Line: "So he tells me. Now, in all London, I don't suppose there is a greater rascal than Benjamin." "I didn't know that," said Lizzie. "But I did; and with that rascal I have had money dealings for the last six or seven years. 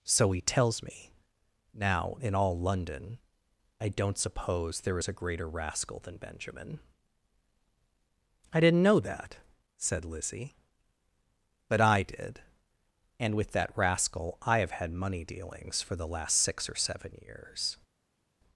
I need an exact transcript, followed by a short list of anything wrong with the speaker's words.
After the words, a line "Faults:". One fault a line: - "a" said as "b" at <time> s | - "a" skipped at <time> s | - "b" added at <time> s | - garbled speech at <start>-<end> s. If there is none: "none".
"So he tells me. Now, in all London, I don't suppose there is a greater rascal than Benjamin." "I didn't know that," said Lizzie. "But I did; and with that rascal I have had money dealings for the last six or seven years.
Faults:
none